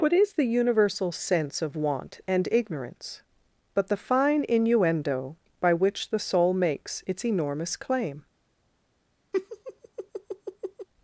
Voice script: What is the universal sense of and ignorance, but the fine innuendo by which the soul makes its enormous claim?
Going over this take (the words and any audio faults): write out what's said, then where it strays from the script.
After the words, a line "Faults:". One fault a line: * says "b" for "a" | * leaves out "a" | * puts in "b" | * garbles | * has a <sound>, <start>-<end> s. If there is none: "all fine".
What is the universal sense of want and ignorance, but the fine innuendo by which the soul makes its enormous claim?
Faults:
* puts in "want"
* has a laugh, 9.3-10.9 s